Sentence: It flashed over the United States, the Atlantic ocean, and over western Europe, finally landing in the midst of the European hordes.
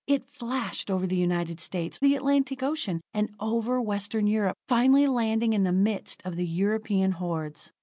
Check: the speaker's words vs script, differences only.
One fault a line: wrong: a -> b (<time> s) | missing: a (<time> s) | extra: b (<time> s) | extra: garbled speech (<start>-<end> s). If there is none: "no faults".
no faults